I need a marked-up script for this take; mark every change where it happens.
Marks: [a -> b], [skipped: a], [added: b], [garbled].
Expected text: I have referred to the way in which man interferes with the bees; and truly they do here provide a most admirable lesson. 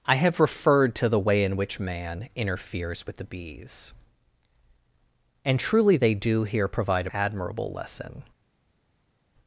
I have referred to the way in which man interferes with the bees; and truly they do here provide a [skipped: most] admirable lesson.